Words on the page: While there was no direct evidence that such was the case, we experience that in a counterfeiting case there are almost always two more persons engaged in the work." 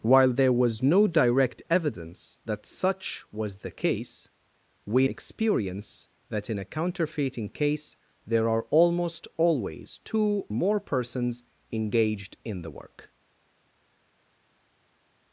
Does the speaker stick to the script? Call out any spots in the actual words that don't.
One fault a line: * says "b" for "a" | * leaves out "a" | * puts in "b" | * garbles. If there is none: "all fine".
all fine